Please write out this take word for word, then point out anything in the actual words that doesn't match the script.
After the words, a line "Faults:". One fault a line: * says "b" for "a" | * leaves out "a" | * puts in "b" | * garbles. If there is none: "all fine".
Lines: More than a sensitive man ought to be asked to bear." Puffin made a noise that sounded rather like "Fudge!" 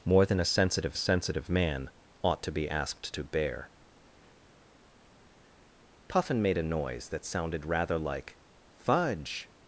More than a sensitive sensitive man ought to be asked to bear." Puffin made a noise that sounded rather like "Fudge!"
Faults:
* puts in "sensitive"